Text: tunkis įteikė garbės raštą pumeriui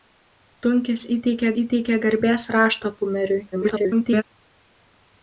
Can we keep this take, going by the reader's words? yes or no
no